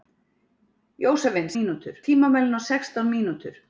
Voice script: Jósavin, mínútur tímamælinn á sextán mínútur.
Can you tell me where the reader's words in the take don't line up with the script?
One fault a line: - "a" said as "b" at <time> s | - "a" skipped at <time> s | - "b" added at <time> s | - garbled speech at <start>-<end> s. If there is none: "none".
none